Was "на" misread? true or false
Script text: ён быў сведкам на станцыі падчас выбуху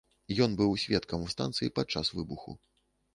false